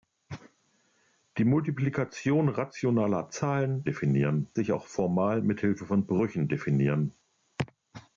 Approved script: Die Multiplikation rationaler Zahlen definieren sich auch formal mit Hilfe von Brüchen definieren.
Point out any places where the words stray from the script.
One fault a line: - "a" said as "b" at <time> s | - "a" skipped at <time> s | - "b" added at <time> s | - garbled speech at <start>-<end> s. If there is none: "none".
none